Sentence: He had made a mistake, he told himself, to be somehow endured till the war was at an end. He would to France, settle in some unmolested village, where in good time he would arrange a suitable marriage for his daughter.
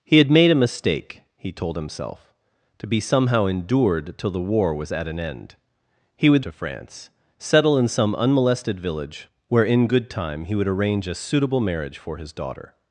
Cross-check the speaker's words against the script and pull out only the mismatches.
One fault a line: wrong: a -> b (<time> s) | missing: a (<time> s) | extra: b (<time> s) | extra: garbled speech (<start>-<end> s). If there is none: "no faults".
no faults